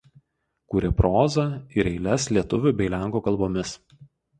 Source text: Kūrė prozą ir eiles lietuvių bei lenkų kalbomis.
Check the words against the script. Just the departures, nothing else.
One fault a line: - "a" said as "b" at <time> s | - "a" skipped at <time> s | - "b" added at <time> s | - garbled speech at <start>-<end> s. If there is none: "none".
none